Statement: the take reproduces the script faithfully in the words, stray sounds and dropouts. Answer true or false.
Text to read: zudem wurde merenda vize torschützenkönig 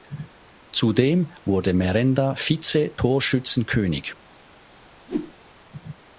false